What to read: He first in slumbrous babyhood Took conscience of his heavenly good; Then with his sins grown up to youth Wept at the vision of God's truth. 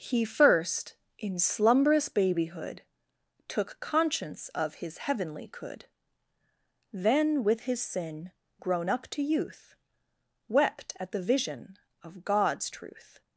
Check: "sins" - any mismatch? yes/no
yes